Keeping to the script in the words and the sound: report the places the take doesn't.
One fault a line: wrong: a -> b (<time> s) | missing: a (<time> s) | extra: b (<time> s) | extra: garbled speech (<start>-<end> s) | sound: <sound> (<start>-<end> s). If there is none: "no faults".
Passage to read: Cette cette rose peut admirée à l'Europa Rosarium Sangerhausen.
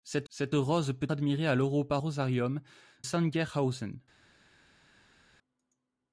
no faults